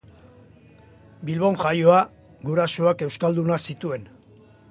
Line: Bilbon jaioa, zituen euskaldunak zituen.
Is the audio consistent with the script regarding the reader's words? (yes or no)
no